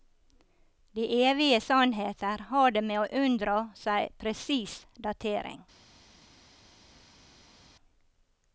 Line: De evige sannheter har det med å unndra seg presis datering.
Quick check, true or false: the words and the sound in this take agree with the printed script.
true